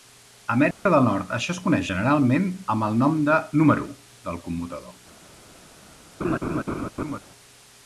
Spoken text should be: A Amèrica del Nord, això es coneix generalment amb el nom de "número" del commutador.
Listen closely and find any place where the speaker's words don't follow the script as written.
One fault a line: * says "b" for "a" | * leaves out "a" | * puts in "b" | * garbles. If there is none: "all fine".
all fine